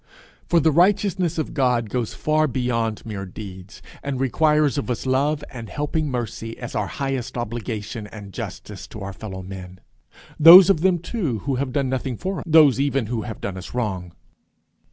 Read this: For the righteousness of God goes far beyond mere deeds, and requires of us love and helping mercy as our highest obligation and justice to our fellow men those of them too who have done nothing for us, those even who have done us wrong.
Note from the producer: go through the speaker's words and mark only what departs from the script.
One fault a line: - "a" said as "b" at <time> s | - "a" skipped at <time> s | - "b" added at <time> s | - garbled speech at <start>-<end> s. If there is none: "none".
- "us" skipped at 12.4 s